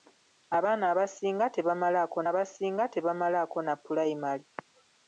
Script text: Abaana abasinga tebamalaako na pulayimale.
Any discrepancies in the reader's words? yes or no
yes